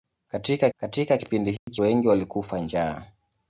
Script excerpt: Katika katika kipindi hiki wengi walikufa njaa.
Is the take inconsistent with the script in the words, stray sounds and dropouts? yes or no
yes